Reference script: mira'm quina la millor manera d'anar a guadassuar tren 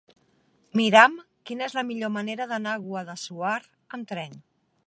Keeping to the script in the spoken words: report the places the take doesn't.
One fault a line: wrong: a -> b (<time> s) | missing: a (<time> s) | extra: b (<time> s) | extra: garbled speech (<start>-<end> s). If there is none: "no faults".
extra: és (1.7 s)
extra: amb (4.0 s)